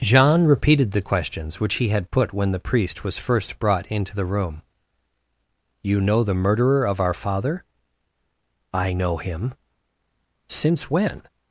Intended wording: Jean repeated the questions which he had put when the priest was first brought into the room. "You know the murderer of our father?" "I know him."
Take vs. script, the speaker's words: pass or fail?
fail